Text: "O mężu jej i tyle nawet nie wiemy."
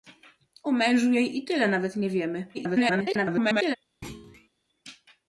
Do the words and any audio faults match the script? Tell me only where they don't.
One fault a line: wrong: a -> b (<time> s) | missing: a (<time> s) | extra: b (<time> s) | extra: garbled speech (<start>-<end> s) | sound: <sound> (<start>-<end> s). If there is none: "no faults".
extra: garbled speech (2.5-3.8 s)
sound: thud (4.0-4.5 s)